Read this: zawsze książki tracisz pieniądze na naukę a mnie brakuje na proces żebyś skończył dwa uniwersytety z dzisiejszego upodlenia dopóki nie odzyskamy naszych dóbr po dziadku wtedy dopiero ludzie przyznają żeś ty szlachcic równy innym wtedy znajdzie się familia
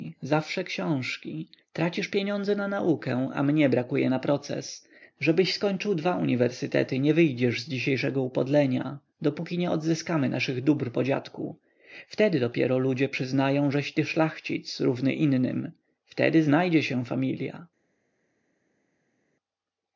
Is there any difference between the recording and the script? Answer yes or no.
yes